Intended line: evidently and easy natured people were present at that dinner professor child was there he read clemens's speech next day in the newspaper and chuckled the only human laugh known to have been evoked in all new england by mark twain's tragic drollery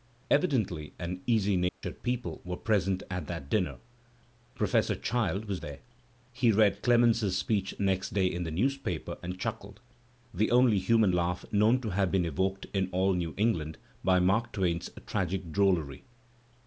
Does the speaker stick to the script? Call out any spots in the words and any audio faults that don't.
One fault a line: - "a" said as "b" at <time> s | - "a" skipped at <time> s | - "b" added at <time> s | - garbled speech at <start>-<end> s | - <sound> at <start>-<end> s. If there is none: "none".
- dropout at 1.7-1.8 s